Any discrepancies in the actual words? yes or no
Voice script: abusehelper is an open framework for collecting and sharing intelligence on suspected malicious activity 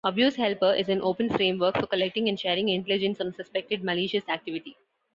no